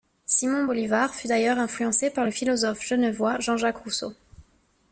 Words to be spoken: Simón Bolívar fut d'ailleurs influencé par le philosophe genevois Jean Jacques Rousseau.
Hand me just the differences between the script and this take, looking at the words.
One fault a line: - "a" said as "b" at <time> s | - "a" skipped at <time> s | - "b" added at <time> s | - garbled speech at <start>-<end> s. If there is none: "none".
none